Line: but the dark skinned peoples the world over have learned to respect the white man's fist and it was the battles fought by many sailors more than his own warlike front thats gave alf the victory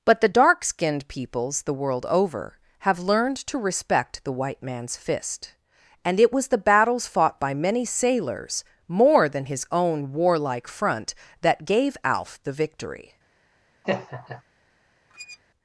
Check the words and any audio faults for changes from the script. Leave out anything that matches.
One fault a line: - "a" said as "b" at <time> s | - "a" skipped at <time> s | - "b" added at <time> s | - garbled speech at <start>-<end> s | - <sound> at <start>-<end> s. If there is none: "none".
- "thats" said as "that" at 11.4 s
- laugh at 13.8-14.4 s
- squeak at 15.1-15.4 s